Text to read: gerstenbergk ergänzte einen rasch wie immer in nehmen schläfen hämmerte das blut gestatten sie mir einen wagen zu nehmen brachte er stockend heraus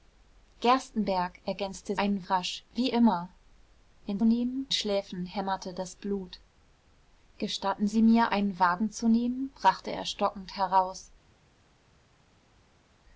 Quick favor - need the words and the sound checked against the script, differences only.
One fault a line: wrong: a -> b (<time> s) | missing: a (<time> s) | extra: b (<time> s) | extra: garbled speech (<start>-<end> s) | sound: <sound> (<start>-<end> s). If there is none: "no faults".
no faults